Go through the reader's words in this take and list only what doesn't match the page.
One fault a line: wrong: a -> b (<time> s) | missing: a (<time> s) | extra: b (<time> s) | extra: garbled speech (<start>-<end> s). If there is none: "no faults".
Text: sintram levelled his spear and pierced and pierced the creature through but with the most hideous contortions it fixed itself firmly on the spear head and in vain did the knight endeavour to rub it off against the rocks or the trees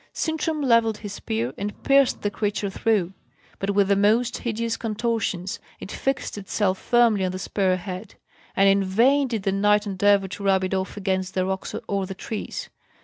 missing: and pierced (2.2 s)